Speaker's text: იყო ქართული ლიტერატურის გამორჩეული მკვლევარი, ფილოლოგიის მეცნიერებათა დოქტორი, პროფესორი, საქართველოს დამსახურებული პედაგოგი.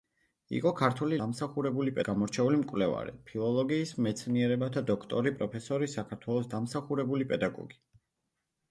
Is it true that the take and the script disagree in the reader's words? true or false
true